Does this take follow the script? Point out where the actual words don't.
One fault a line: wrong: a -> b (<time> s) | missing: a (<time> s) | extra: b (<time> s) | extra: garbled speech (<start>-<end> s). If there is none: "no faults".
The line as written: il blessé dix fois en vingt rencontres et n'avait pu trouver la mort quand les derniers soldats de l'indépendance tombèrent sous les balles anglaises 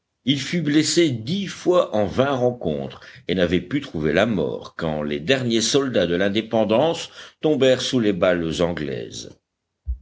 extra: fut (0.4 s)